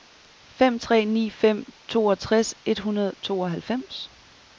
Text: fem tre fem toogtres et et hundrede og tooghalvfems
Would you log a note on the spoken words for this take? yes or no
yes